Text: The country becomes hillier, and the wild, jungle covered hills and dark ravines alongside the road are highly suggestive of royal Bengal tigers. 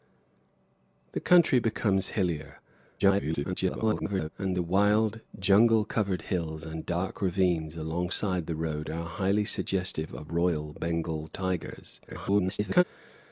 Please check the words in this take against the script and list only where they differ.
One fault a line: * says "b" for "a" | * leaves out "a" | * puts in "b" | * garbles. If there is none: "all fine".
* garbles
* garbles